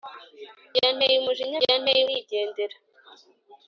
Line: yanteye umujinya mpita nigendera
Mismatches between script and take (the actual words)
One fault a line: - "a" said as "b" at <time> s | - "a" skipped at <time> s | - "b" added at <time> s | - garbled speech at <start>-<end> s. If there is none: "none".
- "mpita" said as "yanteye" at 1.6 s